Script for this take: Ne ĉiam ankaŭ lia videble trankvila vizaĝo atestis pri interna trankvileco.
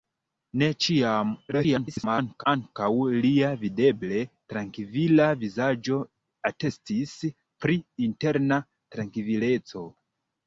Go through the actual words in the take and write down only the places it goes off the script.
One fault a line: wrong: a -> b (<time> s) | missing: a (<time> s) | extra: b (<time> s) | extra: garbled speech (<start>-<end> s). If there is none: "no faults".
extra: garbled speech (1.5-2.4 s)